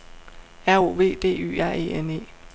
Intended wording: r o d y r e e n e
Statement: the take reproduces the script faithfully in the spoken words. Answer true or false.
false